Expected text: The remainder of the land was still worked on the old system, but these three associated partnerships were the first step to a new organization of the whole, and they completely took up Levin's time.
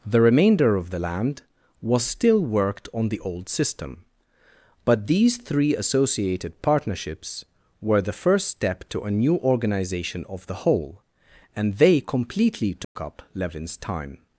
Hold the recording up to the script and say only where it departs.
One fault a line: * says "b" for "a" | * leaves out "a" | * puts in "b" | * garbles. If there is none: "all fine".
all fine